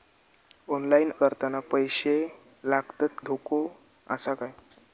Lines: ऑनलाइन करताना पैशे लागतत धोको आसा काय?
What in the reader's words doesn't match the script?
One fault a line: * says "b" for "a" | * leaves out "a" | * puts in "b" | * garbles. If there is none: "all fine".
all fine